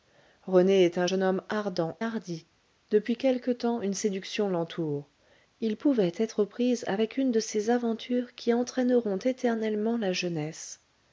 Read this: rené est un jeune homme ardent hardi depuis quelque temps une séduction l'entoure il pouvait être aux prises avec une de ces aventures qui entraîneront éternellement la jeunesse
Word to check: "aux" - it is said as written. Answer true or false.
true